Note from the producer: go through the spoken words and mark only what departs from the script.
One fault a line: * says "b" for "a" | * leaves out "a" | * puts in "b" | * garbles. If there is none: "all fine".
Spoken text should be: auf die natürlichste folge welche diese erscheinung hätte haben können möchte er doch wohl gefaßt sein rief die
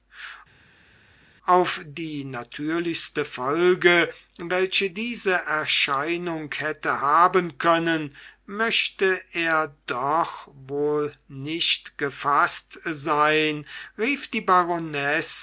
* puts in "nicht"